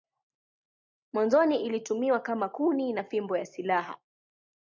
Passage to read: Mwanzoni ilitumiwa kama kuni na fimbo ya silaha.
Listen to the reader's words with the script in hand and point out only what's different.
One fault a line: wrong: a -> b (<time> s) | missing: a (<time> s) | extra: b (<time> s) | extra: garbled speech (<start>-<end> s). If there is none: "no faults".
no faults